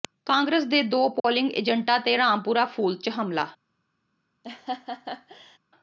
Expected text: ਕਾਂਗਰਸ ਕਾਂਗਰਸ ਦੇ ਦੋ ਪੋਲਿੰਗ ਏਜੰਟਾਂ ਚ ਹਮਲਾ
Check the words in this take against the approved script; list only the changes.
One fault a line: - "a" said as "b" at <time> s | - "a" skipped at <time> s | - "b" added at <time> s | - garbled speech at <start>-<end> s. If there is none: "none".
- "ਕਾਂਗਰਸ" skipped at 0.6 s
- "ਤੇ ਰਾਮਪੁਰਾ ਫੂਲ" added at 2.0 s